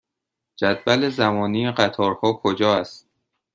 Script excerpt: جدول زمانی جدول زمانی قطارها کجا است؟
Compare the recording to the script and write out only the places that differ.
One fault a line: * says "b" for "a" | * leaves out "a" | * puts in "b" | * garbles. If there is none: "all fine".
* leaves out "جدول زمانی"